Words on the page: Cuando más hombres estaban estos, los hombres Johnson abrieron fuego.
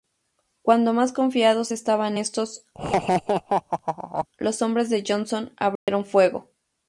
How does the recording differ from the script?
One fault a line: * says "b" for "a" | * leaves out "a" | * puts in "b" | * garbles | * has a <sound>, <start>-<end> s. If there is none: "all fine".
* says "confiados" for "hombres"
* has a laugh, 2.7-4.3 s
* puts in "de"
* has a dropout, 5.8-5.9 s